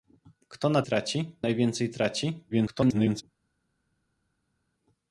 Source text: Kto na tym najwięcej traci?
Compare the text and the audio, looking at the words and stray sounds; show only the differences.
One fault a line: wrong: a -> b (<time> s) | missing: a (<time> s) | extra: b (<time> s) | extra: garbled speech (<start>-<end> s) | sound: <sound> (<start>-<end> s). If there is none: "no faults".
wrong: tym -> traci (0.8 s)
extra: garbled speech (2.5-3.2 s)